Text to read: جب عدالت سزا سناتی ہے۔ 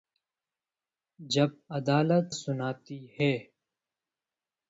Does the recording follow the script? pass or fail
fail